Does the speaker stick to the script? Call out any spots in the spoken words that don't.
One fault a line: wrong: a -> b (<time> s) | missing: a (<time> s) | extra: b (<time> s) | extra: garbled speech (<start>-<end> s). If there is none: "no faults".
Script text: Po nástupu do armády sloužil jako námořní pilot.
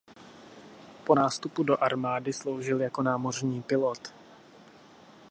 no faults